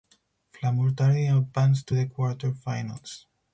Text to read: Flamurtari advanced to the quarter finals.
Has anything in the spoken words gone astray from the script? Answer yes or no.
no